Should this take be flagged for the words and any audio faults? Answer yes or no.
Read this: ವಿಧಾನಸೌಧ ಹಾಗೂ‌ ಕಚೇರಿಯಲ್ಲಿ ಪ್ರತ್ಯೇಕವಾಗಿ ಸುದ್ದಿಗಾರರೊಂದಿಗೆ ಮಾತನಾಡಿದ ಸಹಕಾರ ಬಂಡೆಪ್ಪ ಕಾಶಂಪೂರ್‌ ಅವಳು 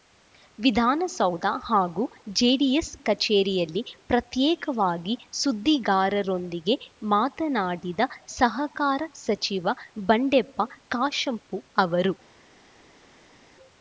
yes